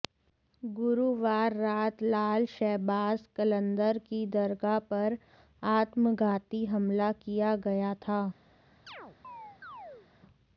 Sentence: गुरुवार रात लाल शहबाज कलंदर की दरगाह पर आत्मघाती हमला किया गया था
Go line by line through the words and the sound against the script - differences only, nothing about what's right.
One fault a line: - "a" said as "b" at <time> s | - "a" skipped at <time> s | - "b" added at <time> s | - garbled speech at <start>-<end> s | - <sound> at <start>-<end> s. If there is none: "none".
- chirp at 8.9-10.1 s